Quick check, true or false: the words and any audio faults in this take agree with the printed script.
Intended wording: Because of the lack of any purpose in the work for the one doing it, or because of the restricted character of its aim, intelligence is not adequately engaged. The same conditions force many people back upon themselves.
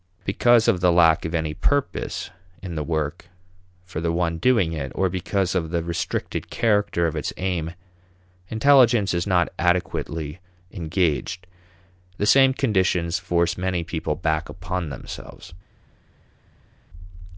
true